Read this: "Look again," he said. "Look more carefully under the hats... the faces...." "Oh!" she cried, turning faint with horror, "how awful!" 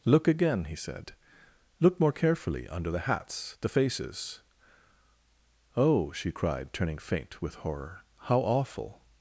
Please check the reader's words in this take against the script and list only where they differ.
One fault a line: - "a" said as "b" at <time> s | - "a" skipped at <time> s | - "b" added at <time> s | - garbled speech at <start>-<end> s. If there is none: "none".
none